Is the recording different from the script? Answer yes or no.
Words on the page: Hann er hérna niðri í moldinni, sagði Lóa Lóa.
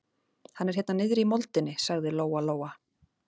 no